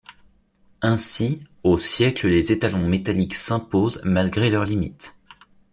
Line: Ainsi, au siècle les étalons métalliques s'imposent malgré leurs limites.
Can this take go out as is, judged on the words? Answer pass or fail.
pass